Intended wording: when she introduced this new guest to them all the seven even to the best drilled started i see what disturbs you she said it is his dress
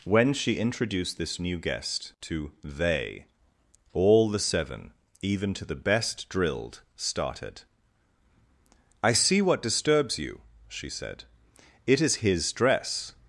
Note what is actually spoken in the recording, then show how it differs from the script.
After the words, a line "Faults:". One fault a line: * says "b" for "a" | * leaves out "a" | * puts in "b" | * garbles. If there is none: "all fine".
when she introduced this new guest to they all the seven even to the best drilled started i see what disturbs you she said it is his dress
Faults:
* says "they" for "them"